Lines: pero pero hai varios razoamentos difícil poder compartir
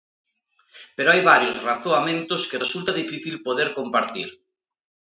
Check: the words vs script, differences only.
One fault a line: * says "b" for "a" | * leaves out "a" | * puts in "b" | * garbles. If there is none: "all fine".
* leaves out "pero"
* puts in "que resulta"